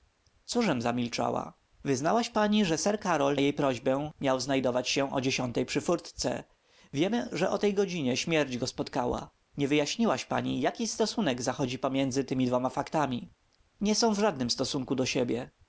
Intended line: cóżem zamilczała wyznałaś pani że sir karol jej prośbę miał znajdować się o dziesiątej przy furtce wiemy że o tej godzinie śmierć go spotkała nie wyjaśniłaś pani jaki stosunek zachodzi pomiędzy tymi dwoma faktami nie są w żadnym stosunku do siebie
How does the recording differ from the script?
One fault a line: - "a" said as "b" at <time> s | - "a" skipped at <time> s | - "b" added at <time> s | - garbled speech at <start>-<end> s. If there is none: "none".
none